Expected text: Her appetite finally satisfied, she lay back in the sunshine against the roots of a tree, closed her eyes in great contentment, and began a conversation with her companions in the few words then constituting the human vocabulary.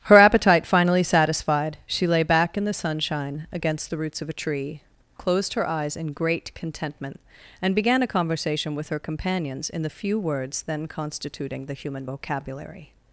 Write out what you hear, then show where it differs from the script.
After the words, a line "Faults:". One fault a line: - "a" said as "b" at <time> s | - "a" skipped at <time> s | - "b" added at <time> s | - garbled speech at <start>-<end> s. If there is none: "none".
Her appetite finally satisfied, she lay back in the sunshine against the roots of a tree, closed her eyes in great contentment, and began a conversation with her companions in the few words then constituting the human vocabulary.
Faults:
none